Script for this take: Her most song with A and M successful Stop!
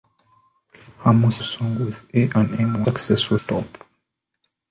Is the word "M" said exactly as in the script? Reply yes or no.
yes